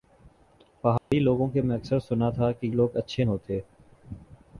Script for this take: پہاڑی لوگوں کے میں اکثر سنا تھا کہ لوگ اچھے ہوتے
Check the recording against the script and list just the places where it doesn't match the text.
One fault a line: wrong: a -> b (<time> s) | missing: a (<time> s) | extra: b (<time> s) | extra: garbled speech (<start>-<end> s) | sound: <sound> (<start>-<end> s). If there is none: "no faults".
sound: dropout (1.0-1.1 s)